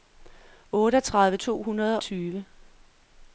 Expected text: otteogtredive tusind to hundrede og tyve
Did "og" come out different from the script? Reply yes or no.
yes